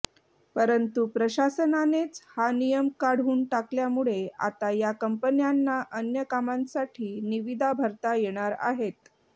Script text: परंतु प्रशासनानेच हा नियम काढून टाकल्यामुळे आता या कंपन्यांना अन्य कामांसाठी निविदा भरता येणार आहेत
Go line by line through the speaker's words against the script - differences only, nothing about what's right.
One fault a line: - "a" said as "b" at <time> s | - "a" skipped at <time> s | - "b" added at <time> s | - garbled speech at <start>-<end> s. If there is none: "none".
none